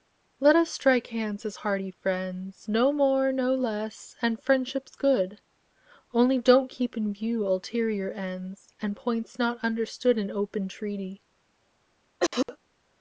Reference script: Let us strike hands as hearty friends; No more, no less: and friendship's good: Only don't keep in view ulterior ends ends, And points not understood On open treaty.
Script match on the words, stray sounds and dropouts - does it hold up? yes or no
no